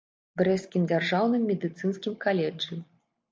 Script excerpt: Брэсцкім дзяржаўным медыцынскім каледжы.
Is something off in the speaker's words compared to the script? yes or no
no